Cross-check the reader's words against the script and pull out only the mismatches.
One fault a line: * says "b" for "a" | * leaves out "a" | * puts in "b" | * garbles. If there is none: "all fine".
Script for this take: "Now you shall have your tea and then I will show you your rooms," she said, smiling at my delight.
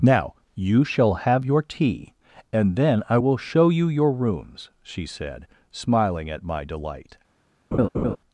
all fine